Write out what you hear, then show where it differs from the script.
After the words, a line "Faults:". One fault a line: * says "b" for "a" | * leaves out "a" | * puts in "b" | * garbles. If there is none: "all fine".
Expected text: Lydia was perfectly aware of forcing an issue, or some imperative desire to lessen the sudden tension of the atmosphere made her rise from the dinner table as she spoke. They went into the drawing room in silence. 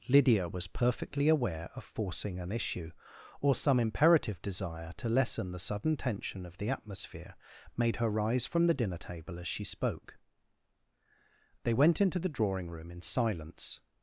Lydia was perfectly aware of forcing an issue, or some imperative desire to lessen the sudden tension of the atmosphere made her rise from the dinner table as she spoke. They went into the drawing room in silence.
Faults:
all fine